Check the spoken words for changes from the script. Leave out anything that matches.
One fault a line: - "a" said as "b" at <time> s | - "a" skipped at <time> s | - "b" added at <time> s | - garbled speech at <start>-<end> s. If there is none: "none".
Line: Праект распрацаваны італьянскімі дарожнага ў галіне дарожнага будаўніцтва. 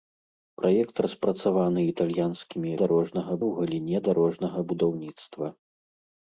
none